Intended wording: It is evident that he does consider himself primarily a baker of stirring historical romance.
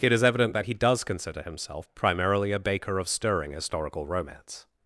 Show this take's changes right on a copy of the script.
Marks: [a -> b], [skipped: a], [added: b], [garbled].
It is evident that he does consider himself primarily a baker of stirring historical romance.